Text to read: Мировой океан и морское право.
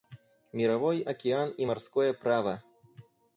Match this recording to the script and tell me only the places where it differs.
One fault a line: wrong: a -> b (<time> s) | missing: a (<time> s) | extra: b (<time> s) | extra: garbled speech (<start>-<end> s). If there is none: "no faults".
no faults